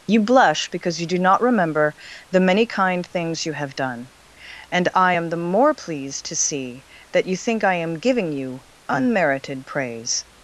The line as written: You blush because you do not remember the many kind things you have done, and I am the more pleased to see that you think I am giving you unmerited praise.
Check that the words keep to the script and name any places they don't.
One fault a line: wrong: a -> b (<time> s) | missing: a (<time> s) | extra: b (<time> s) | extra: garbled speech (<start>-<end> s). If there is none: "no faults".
no faults